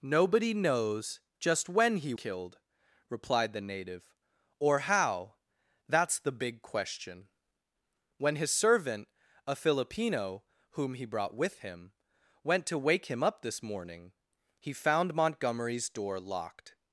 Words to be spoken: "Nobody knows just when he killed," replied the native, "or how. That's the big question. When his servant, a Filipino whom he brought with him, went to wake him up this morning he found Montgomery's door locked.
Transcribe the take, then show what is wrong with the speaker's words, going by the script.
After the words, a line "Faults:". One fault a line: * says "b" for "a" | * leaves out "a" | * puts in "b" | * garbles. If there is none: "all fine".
"Nobody knows just when he killed," replied the native, "or how. That's the big question. When his servant, a Filipino whom he brought with him, went to wake him up this morning he found Montgomery's door locked.
Faults:
all fine